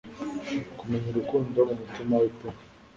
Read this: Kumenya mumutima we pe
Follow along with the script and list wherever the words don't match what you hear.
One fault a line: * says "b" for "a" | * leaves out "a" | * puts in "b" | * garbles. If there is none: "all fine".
* puts in "urukundo"